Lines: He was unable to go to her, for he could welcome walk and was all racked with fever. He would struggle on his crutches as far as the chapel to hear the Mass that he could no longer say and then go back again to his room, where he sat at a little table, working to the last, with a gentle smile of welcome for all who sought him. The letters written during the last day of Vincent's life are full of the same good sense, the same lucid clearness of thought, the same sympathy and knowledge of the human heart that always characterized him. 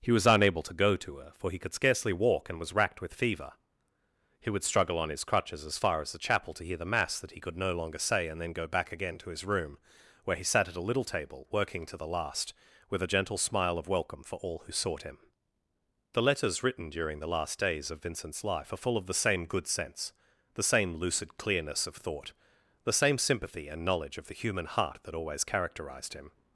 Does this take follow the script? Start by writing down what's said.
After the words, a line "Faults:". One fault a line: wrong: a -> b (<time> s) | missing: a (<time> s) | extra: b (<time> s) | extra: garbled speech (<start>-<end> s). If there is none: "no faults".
He was unable to go to her, for he could scarcely walk and was racked with fever. He would struggle on his crutches as far as the chapel to hear the Mass that he could no longer say and then go back again to his room, where he sat at a little table, working to the last, with a gentle smile of welcome for all who sought him. The letters written during the last days of Vincent's life are full of the same good sense, the same lucid clearness of thought, the same sympathy and knowledge of the human heart that always characterized him.
Faults:
wrong: welcome -> scarcely (1.8 s)
missing: all (2.7 s)
wrong: day -> days (17.6 s)